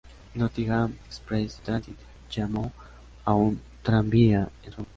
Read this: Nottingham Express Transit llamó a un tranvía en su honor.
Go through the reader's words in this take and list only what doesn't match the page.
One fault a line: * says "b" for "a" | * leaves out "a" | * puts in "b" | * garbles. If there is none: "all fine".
all fine